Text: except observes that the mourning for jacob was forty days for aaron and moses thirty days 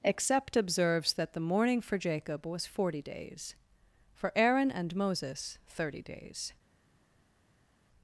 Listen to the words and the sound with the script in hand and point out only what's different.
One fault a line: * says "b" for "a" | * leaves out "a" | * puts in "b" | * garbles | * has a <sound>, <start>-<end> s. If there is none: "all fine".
all fine